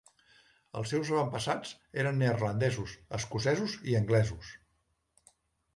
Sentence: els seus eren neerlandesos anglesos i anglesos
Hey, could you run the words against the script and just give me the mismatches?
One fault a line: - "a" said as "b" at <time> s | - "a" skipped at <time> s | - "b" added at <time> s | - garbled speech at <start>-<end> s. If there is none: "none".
- "avantpassats" added at 1.1 s
- "anglesos" said as "escocesos" at 3.2 s